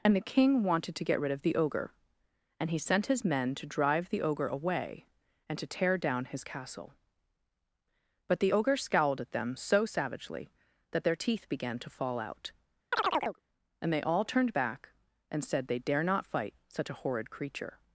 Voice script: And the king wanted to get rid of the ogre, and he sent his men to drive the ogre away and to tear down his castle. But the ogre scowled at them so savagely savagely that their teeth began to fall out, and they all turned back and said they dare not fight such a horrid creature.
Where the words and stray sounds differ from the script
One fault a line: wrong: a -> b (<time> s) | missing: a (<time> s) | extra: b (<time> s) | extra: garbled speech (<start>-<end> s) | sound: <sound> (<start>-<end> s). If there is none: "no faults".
missing: savagely (10.5 s)
sound: chirp (12.9-13.4 s)